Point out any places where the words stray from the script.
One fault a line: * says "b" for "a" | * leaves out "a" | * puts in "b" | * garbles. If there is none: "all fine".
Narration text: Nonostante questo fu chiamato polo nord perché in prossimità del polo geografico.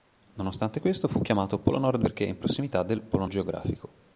all fine